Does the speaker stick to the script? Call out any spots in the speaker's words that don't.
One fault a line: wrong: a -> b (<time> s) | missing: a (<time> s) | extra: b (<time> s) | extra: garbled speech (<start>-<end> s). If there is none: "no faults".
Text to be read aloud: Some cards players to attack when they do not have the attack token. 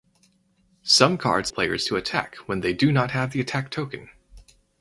no faults